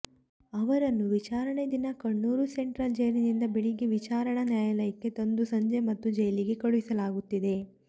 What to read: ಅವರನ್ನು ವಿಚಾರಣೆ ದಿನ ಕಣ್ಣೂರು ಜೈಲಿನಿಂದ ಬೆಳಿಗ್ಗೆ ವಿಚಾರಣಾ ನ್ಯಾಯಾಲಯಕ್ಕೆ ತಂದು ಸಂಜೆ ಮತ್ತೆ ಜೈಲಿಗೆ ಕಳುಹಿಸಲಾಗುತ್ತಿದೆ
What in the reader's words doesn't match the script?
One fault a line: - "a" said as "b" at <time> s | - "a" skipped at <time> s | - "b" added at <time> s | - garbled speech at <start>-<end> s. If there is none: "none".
- "ಸೆಂಟ್ರಲ್" added at 2.5 s